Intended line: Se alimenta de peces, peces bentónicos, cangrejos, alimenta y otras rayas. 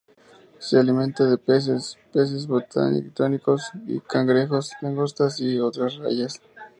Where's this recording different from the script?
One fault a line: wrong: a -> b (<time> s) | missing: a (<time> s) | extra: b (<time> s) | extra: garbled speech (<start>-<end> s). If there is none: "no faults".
wrong: alimenta -> langostas (4.8 s)